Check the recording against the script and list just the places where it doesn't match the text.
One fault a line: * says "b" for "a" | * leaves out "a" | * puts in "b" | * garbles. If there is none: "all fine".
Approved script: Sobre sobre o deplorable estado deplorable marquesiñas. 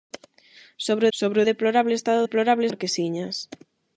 all fine